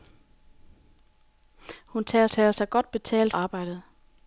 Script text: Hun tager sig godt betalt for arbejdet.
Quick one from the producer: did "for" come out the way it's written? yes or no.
no